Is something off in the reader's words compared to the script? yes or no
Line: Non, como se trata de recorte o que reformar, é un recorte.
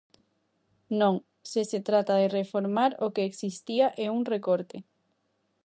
yes